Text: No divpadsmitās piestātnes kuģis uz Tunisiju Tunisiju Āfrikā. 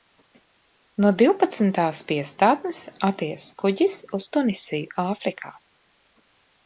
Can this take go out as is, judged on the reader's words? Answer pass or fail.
fail